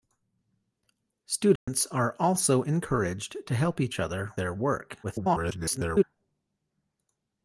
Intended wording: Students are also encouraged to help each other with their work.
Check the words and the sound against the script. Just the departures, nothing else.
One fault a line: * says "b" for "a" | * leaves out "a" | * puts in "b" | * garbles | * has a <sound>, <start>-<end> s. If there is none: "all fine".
* has a dropout, 1.6-1.7 s
* leaves out "with"
* garbles